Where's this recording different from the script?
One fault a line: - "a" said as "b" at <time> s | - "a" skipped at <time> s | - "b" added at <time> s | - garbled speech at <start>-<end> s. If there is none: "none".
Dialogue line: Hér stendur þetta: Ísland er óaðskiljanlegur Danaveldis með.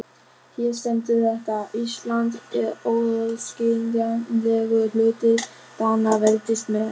- "hluti" added at 5.0 s